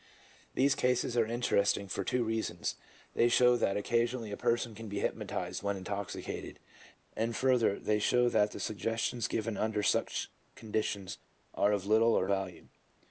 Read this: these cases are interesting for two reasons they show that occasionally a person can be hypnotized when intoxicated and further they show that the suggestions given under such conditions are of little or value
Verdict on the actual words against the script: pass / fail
pass